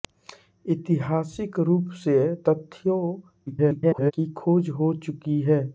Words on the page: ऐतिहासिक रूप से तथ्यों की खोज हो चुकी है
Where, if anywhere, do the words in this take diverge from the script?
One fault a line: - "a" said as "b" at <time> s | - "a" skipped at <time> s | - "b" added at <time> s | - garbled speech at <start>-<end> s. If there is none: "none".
- garbled speech at 3.5-4.1 s